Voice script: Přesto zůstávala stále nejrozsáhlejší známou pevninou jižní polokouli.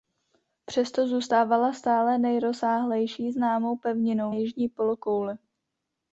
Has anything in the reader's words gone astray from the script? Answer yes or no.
no